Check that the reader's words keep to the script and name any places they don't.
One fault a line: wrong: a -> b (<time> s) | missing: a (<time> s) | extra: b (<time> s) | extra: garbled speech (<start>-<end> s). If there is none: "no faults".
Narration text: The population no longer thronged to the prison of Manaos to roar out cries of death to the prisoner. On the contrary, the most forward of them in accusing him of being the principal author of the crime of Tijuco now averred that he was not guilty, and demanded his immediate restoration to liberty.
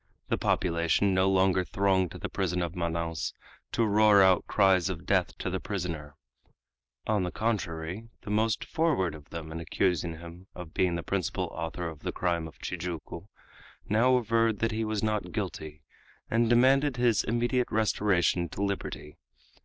no faults